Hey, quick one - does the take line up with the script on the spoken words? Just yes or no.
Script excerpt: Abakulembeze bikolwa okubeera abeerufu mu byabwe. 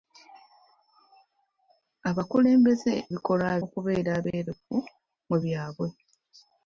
yes